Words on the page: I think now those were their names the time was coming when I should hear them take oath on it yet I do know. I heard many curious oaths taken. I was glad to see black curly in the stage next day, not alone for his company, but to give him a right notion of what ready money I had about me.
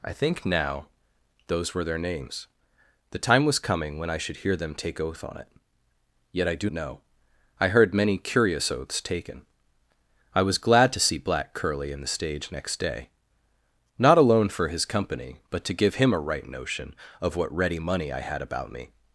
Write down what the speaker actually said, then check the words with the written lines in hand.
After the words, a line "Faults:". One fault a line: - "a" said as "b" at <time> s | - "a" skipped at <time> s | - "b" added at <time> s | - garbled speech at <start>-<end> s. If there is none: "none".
I think now those were their names the time was coming when I should hear them take oath on it yet I do know. I heard many curious oaths taken. I was glad to see black curly in the stage next day, not alone for his company, but to give him a right notion of what ready money I had about me.
Faults:
none